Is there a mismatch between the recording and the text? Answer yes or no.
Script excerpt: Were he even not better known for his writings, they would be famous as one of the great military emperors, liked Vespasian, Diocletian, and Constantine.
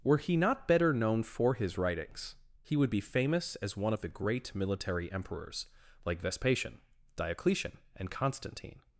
yes